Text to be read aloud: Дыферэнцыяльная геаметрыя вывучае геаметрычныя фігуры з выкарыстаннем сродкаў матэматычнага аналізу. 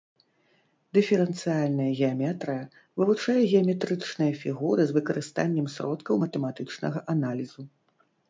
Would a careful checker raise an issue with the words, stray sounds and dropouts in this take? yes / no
no